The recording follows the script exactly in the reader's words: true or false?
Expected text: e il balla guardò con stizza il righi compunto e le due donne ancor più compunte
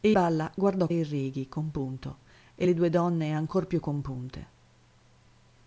false